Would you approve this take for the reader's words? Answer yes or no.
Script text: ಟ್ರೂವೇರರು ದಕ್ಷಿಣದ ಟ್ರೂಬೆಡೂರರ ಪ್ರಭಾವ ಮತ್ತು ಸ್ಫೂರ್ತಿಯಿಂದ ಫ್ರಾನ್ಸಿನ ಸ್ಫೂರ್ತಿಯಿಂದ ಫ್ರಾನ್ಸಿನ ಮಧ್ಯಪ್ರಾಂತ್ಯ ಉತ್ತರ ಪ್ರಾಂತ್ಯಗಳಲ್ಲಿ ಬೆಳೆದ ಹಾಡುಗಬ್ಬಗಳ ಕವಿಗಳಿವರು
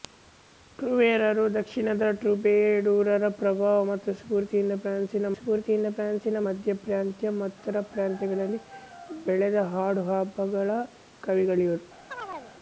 yes